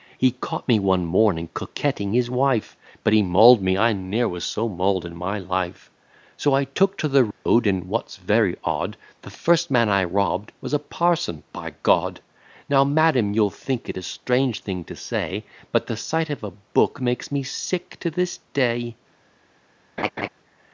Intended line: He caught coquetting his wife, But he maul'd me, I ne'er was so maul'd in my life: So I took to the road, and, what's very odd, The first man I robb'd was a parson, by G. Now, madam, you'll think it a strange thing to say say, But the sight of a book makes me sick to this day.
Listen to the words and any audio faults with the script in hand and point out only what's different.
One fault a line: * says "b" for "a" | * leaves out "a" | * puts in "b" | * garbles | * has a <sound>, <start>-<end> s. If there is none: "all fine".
* puts in "me one morning"
* has a dropout, 7.3-7.5 s
* leaves out "say"
* has a laugh, 20.0-20.3 s